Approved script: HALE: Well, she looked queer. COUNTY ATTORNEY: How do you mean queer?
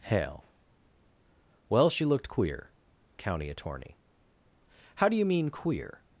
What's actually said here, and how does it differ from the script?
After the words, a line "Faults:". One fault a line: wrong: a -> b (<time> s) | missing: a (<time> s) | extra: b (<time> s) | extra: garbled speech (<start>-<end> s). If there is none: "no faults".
HALE: Well, she looked queer. COUNTY ATTORNEY: How do you mean queer?
Faults:
no faults